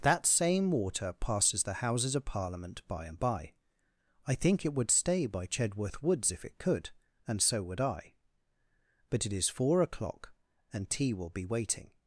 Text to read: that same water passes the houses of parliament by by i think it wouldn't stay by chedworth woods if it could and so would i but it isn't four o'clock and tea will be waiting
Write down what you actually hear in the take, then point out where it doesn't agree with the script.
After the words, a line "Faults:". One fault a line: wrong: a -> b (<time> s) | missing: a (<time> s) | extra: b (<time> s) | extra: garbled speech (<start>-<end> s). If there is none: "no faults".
that same water passes the houses of parliament by and by i think it would stay by chedworth woods if it could and so would i but it is four o'clock and tea will be waiting
Faults:
extra: and (3.1 s)
wrong: wouldn't -> would (4.7 s)
wrong: isn't -> is (9.3 s)